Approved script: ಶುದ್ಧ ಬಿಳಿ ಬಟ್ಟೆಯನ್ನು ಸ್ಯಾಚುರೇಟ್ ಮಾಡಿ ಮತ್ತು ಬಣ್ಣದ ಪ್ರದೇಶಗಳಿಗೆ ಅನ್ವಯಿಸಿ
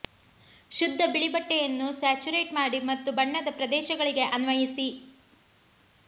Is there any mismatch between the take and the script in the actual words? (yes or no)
no